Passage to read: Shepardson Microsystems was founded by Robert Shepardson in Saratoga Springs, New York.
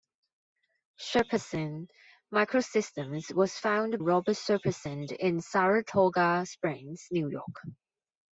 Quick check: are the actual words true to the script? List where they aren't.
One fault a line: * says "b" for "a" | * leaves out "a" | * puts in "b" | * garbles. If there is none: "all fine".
* leaves out "by"